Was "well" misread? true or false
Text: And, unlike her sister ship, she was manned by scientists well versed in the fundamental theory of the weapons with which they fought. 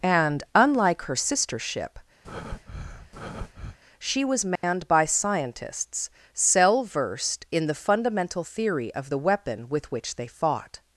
true